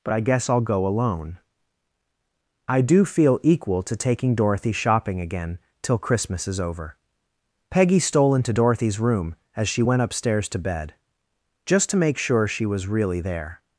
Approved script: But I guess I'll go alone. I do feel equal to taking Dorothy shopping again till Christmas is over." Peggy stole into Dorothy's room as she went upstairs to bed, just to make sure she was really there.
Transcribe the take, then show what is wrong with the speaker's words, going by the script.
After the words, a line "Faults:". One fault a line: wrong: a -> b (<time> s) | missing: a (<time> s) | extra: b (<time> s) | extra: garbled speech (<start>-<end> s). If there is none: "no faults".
But I guess I'll go alone. I do feel equal to taking Dorothy shopping again till Christmas is over." Peggy stole into Dorothy's room as she went upstairs to bed, just to make sure she was really there.
Faults:
no faults